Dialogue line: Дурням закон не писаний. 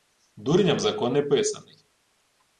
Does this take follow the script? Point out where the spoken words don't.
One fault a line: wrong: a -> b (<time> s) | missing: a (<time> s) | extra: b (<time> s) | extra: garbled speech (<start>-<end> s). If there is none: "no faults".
no faults